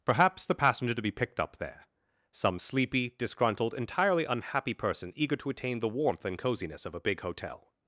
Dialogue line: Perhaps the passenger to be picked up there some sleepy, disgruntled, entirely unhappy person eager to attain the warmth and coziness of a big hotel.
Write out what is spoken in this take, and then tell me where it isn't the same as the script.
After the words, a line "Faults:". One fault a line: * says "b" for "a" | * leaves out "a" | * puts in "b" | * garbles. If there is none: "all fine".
Perhaps the passenger to be picked up there some sleepy, disgruntled, entirely unhappy person eager to attain the warmth and coziness of a big hotel.
Faults:
all fine